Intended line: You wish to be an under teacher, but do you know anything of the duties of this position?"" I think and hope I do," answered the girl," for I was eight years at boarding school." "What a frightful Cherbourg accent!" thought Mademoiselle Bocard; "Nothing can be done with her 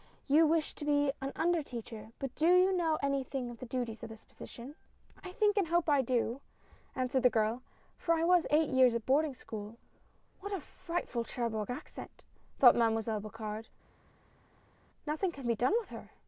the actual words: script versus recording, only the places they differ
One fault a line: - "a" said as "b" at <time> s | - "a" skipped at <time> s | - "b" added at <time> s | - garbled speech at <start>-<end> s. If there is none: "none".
none